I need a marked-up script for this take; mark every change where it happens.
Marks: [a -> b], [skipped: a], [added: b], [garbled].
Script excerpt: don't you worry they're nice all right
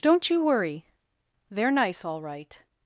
don't you worry they're nice all right